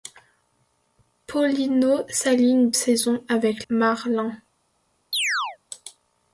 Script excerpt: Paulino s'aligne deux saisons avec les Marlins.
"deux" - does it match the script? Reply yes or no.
no